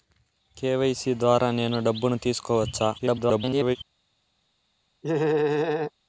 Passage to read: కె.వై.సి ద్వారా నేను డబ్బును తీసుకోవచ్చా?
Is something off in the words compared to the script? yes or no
yes